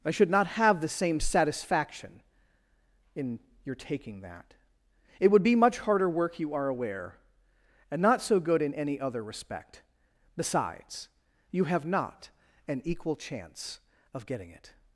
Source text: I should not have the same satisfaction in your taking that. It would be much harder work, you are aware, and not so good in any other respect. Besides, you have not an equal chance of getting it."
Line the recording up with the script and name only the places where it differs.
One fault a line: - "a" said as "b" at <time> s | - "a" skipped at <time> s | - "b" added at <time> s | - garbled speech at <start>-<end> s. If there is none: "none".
none